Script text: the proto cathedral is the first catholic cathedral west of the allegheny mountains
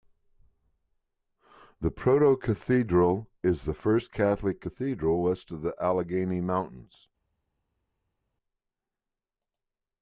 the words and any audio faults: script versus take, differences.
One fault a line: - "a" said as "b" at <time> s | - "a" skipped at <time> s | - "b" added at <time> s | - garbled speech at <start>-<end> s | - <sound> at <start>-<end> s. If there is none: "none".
none